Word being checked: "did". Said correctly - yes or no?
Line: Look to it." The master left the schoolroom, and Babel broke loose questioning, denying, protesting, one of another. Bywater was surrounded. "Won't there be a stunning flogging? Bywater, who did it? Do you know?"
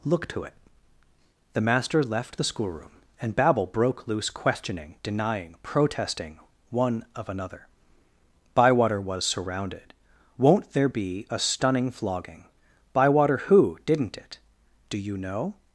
no